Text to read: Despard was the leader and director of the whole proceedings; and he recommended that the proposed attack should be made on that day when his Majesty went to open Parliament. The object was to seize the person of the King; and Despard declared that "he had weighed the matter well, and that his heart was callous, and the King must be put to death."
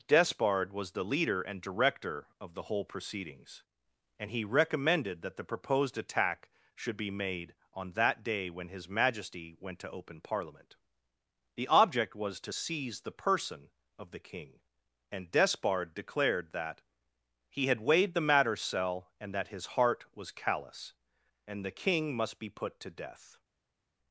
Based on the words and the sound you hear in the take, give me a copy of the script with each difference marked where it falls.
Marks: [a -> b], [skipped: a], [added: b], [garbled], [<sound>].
Despard was the leader and director of the whole proceedings; and he recommended that the proposed attack should be made on that day when his Majesty went to open Parliament. The object was to seize the person of the King; and Despard declared that "he had weighed the matter [well, -> cell] and that his heart was callous, and the King must be put to death."